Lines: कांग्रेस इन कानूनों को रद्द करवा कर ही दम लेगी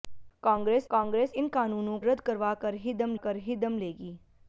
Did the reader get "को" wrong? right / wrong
wrong